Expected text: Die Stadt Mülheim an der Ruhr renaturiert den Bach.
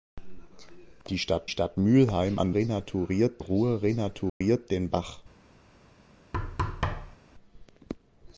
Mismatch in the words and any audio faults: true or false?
true